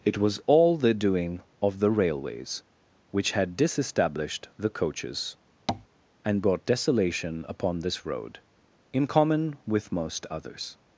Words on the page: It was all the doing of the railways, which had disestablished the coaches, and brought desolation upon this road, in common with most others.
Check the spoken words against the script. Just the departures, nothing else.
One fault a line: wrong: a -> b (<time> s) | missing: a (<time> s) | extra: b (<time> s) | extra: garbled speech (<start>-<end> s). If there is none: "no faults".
no faults